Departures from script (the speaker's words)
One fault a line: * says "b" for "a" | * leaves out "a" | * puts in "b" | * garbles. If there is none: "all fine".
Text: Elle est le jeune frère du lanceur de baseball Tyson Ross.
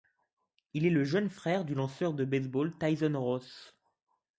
* says "Il" for "Elle"